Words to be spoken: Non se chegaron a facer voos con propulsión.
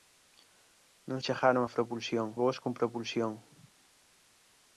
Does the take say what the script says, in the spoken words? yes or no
no